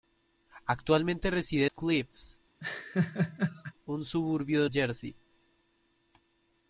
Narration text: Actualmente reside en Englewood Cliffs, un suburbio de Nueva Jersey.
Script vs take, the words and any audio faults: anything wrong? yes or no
yes